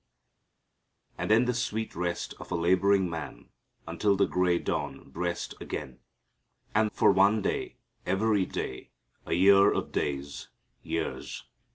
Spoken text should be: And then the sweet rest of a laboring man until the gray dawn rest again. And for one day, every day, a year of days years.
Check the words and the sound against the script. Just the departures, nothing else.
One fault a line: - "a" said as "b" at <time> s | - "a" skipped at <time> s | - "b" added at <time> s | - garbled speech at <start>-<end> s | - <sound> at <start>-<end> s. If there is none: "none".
none